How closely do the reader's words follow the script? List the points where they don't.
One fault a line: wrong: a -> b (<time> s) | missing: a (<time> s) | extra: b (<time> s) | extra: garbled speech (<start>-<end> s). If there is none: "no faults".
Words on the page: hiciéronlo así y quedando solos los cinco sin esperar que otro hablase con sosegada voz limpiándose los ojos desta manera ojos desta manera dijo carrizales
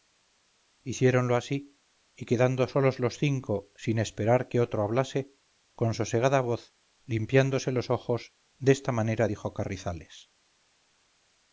missing: ojos desta manera (9.3 s)